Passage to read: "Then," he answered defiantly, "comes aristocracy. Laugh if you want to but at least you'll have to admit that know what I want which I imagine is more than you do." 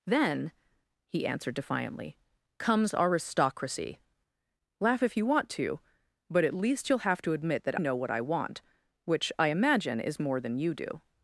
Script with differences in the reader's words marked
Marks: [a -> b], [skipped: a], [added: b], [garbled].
"Then," he answered defiantly, "comes aristocracy. Laugh if you want to but at least you'll have to admit that know what I want which I imagine is more than you do."